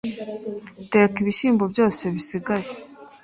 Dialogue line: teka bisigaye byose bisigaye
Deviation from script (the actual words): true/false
true